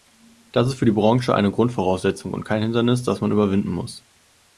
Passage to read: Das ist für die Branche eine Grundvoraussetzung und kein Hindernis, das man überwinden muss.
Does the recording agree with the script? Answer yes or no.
yes